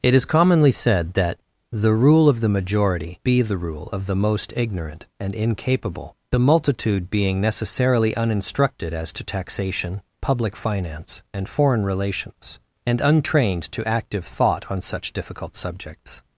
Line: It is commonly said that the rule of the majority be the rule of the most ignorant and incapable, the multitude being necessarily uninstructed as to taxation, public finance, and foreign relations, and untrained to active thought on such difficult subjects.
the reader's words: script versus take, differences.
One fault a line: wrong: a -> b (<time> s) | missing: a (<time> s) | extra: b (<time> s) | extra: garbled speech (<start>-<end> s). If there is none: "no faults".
no faults